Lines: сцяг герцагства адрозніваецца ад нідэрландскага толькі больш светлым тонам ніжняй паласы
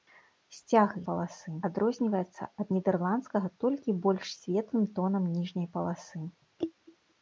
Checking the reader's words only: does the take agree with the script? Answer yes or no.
no